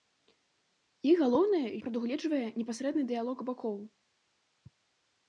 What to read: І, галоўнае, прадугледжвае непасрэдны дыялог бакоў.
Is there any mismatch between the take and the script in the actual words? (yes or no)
no